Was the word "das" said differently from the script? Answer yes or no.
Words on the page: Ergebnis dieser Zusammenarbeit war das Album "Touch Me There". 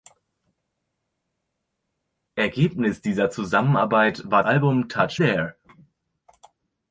yes